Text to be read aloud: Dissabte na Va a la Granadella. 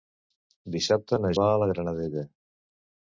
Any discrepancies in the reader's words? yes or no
no